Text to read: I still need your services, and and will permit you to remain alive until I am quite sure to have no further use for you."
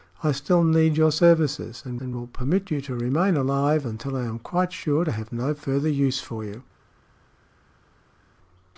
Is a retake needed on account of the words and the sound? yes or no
no